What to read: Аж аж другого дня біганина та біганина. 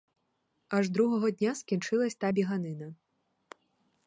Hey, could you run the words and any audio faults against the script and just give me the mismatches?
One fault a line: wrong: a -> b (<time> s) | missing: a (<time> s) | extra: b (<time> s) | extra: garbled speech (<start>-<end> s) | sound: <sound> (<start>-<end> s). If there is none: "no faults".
missing: аж (0.9 s)
wrong: біганина -> скінчилась (1.6 s)